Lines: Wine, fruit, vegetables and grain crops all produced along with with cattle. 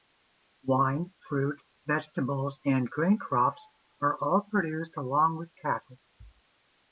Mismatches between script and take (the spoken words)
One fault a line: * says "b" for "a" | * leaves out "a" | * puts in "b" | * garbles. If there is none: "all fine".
* puts in "are"
* leaves out "with"